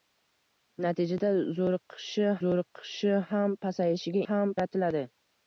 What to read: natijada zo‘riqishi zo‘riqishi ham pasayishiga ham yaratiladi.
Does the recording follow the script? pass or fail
pass